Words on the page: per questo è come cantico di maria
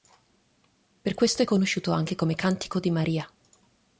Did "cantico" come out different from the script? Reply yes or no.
no